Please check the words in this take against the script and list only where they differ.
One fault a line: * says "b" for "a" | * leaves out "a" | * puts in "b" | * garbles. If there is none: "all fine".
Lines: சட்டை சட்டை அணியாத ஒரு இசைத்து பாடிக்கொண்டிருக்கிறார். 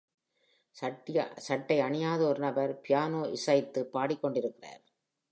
* leaves out "சட்டை"
* puts in "நபர் பியானோ"